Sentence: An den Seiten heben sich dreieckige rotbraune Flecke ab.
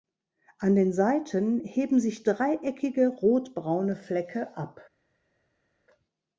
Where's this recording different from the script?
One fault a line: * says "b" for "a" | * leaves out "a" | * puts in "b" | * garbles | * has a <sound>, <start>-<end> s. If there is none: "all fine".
all fine